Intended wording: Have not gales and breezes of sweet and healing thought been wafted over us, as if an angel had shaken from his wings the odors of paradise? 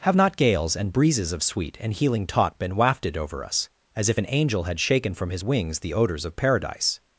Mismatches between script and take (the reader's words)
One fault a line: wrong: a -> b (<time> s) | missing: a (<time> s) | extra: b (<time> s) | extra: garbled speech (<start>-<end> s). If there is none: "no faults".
wrong: thought -> taught (2.2 s)